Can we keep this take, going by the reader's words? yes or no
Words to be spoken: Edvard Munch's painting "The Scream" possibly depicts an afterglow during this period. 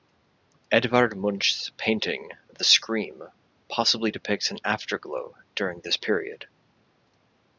yes